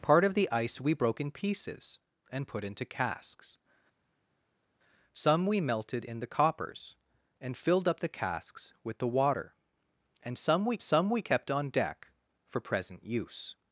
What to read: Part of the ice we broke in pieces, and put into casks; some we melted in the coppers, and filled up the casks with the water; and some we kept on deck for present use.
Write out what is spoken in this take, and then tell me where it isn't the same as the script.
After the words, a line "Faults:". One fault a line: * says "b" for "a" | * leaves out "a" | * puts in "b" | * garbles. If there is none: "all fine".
Part of the ice we broke in pieces, and put into casks; some we melted in the coppers, and filled up the casks with the water; and some we some we kept on deck for present use.
Faults:
* puts in "some we"